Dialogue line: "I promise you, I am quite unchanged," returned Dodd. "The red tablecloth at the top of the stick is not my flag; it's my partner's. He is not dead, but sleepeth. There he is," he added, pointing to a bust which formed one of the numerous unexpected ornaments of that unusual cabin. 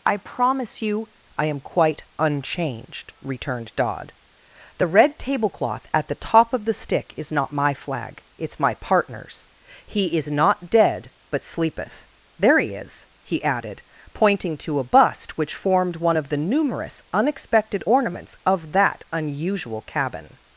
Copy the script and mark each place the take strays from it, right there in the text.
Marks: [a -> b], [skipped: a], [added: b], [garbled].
"I promise you, I am quite unchanged," returned Dodd. "The red tablecloth at the top of the stick is not my flag; it's my partner's. He is not dead, but sleepeth. There he is," he added, pointing to a bust which formed one of the numerous unexpected ornaments of that unusual cabin.